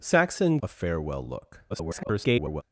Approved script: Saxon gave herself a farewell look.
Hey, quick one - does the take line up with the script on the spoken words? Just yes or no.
no